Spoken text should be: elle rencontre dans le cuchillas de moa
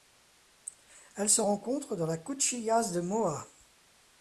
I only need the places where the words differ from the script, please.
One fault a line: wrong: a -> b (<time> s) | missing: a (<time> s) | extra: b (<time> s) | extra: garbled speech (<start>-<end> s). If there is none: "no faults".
extra: se (1.3 s)
wrong: le -> la (2.1 s)